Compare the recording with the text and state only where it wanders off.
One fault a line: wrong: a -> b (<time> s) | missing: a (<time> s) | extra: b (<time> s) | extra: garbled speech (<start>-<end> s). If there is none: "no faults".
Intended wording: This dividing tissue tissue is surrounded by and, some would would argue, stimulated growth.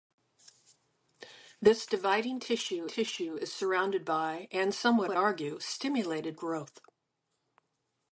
no faults